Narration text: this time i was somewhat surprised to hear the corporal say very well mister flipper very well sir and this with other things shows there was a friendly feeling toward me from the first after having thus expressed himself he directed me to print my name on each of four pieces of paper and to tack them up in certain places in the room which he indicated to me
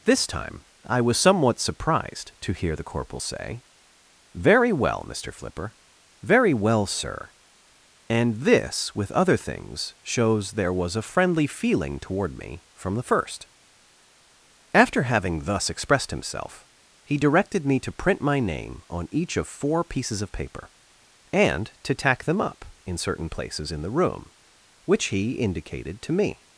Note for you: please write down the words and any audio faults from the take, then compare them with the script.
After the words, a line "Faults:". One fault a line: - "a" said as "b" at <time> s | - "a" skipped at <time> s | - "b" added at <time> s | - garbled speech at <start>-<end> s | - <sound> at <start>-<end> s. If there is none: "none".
this time i was somewhat surprised to hear the corporal say very well mister flipper very well sir and this with other things shows there was a friendly feeling toward me from the first after having thus expressed himself he directed me to print my name on each of four pieces of paper and to tack them up in certain places in the room which he indicated to me
Faults:
none